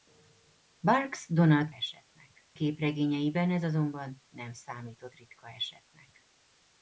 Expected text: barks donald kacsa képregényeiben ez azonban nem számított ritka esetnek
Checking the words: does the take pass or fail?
fail